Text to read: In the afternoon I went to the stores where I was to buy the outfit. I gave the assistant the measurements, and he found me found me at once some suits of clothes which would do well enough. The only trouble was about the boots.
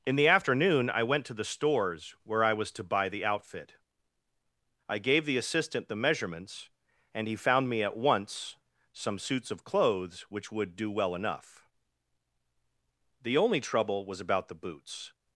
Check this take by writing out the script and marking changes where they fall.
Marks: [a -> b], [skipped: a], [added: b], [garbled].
In the afternoon I went to the stores where I was to buy the outfit. I gave the assistant the measurements, and he found me [skipped: found me] at once some suits of clothes which would do well enough. The only trouble was about the boots.